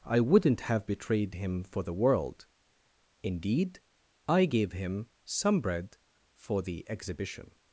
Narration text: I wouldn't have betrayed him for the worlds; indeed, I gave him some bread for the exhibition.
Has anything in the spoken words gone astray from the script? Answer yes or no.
yes